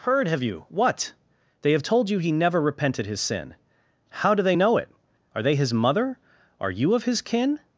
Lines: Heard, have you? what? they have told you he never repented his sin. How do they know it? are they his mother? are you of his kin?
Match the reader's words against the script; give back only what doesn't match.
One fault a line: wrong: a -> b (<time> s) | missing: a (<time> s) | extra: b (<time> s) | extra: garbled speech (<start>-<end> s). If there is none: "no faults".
no faults